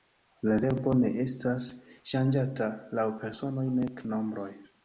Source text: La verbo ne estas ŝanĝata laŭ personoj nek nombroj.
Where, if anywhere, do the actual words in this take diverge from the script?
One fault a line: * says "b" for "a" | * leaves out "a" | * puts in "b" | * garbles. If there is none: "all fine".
all fine